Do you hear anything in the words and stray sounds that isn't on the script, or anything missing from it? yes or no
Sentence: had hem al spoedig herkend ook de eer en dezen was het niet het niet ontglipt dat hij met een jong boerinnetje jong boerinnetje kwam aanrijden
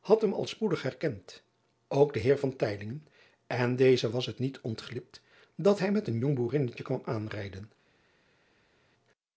yes